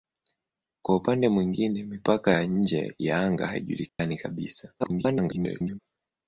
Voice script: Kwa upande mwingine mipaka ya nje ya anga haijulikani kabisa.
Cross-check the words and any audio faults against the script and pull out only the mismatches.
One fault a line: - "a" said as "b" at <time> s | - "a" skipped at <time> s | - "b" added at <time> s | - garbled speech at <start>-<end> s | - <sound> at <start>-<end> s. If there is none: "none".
- dropout at 3.9-4.0 s
- garbled speech at 4.8-5.8 s